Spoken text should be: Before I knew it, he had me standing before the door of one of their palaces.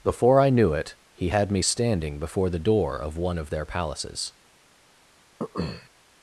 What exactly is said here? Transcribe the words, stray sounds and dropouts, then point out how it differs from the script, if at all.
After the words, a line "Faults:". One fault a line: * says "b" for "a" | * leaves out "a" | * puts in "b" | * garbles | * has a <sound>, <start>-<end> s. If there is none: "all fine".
Before I knew it, he had me standing before the door of one of their palaces.
Faults:
* has a throat clearing, 5.4-5.9 s